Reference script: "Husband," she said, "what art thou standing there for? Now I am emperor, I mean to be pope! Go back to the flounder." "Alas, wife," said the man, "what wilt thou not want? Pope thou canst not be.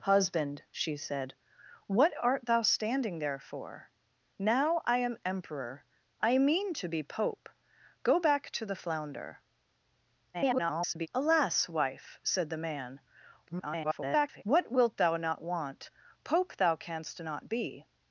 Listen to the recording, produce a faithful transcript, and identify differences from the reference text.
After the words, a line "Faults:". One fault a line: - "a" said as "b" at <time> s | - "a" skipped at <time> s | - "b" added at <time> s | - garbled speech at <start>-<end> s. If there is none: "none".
"Husband," she said, "what art thou standing there for? Now I am emperor, I mean to be pope! Go back to the flounder." [garbled] "Alas, wife," said the man, [garbled] "what wilt thou not want? Pope thou canst not be.
Faults:
- garbled speech at 10.3-11.1 s
- garbled speech at 13.5-14.4 s